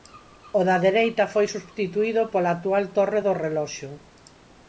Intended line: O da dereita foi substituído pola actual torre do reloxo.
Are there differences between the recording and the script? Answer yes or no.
no